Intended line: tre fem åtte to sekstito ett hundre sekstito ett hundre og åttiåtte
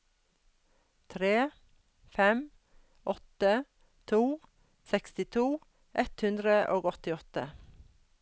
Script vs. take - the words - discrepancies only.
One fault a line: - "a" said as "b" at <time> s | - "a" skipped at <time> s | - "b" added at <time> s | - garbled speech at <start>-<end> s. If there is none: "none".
- "sekstito ett hundre" skipped at 6.6 s